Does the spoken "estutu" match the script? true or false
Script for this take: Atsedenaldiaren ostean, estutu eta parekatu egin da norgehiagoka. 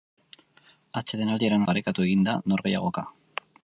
false